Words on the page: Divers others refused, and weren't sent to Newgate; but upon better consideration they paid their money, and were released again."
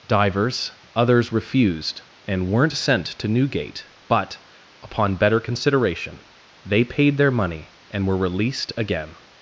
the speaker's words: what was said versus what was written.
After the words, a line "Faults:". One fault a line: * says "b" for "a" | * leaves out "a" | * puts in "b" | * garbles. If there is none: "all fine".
Divers others refused, and weren't sent to Newgate; but upon better consideration they paid their money, and were released again."
Faults:
all fine